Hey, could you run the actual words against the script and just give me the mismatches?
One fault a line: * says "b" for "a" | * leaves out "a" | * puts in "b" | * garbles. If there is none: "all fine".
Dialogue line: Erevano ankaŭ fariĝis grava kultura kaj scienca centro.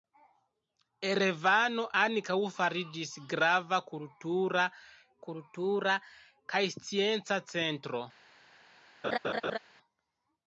* puts in "kultura"